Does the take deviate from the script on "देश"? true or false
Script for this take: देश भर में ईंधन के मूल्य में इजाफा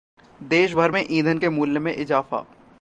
false